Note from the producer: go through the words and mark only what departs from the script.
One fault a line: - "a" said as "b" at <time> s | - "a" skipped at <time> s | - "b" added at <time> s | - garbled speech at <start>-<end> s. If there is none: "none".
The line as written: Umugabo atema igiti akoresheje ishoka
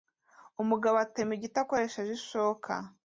none